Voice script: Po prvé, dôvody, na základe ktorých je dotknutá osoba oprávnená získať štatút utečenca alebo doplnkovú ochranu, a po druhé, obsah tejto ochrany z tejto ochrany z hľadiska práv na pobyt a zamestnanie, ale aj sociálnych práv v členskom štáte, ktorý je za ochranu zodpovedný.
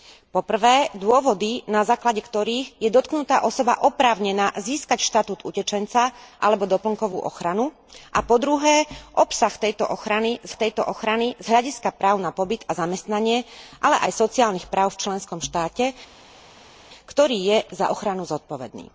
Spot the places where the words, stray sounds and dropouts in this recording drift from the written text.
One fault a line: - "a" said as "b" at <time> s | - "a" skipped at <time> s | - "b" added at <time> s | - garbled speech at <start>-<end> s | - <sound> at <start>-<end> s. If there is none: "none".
none